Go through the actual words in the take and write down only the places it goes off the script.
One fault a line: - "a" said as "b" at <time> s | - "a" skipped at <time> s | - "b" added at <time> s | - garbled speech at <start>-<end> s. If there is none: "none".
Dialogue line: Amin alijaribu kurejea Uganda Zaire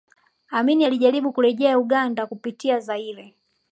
- "kupitia" added at 2.2 s